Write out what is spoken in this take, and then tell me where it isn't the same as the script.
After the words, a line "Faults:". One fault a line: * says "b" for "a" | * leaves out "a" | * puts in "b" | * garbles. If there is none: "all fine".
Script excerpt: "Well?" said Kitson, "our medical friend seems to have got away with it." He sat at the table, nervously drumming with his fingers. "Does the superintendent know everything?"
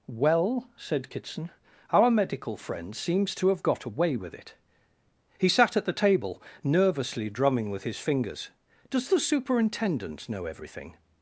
"Well?" said Kitson, "our medical friend seems to have got away with it." He sat at the table, nervously drumming with his fingers. "Does the superintendent know everything?"
Faults:
all fine